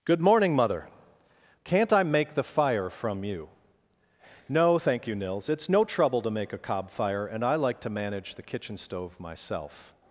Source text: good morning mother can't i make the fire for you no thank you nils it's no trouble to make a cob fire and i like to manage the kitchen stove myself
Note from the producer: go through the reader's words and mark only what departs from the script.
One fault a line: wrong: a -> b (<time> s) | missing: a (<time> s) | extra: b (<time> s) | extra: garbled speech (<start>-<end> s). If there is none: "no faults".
wrong: for -> from (2.9 s)